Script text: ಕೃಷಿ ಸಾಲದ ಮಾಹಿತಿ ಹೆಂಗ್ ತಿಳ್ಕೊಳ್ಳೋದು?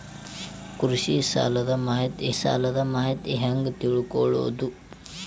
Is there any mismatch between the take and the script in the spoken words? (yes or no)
yes